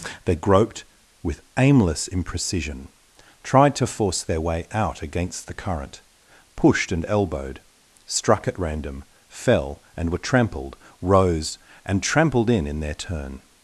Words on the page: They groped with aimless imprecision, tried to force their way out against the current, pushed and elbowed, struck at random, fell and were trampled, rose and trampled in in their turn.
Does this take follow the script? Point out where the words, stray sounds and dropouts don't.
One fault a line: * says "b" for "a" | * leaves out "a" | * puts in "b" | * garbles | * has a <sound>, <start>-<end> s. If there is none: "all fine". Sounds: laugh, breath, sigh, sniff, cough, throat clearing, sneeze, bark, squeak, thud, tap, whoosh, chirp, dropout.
all fine